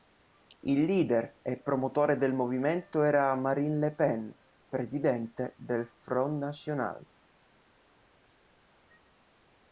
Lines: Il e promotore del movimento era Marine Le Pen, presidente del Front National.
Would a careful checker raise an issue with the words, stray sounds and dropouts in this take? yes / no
yes